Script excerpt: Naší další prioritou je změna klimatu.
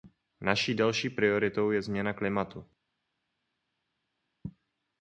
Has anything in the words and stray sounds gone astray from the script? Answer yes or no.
no